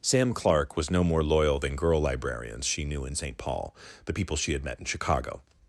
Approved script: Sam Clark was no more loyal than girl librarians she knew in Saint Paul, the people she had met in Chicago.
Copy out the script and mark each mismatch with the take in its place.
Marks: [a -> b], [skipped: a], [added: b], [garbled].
Sam Clark was no more loyal than girl librarians she knew in Saint Paul, the people she had met in Chicago.